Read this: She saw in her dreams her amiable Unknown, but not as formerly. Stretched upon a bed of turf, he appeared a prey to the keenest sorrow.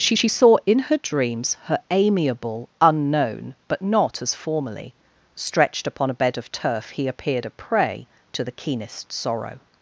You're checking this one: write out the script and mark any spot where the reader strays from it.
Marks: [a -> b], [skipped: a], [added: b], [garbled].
She [added: she] saw in her dreams her amiable Unknown, but not as formerly. Stretched upon a bed of turf, he appeared a prey to the keenest sorrow.